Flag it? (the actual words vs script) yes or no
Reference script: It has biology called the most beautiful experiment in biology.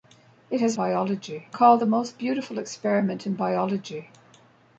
no